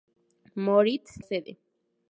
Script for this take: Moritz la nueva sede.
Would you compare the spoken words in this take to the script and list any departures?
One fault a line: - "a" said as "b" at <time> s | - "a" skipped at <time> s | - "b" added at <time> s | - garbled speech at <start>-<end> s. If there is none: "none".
- "la nueva" skipped at 1.2 s